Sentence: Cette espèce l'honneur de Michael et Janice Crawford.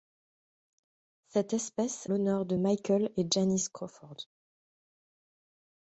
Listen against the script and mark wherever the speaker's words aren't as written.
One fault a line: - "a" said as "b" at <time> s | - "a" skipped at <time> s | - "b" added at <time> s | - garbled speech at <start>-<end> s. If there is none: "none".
none